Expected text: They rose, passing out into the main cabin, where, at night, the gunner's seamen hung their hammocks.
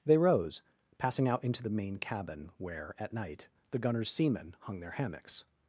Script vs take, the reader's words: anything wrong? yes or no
no